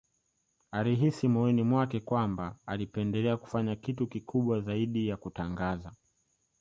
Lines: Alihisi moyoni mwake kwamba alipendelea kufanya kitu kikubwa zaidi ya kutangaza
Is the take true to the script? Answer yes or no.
yes